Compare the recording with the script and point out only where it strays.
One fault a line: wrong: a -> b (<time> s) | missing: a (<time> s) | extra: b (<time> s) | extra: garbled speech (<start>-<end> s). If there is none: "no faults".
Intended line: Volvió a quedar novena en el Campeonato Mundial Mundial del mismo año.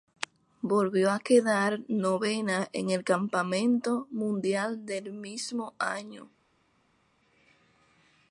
missing: Mundial (4.8 s)